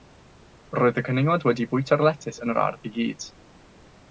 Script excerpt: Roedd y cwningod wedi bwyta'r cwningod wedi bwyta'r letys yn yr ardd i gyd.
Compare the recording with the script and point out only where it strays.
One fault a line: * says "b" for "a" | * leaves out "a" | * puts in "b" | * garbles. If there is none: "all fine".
* leaves out "cwningod wedi bwyta'r"